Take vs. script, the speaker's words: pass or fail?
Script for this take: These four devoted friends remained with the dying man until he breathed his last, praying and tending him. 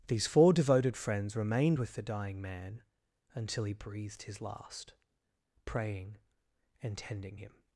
pass